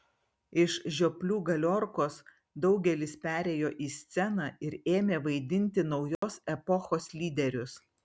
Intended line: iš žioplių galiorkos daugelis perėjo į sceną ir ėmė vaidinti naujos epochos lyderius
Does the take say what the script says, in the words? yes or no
yes